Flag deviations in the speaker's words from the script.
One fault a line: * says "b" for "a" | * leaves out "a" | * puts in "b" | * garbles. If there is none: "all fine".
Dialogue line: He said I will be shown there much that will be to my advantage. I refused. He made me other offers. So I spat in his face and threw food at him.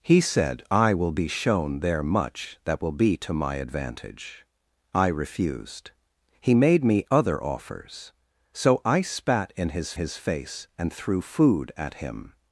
* puts in "his"